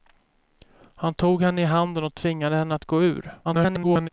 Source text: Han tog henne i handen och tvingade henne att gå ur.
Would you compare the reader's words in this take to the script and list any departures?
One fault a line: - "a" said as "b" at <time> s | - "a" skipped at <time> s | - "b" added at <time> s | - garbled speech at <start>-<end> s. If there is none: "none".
- garbled speech at 3.4-4.1 s